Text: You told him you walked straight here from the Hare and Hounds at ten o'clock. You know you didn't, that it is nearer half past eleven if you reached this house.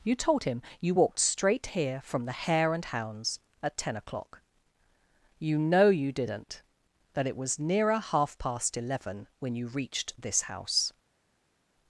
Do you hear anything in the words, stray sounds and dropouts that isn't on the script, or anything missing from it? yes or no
yes